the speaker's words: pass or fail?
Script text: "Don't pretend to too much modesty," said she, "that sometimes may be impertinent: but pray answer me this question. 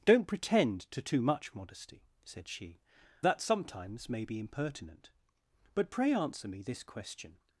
pass